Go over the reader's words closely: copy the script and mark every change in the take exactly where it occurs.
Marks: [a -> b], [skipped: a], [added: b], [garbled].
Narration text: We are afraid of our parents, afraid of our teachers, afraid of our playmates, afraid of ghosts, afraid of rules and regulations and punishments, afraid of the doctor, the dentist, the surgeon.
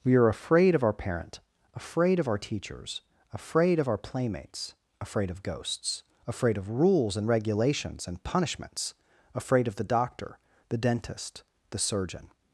We are afraid of our [parents, -> parent] afraid of our teachers, afraid of our playmates, afraid of ghosts, afraid of rules and regulations and punishments, afraid of the doctor, the dentist, the surgeon.